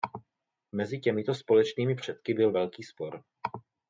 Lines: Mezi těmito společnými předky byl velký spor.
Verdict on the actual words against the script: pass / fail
pass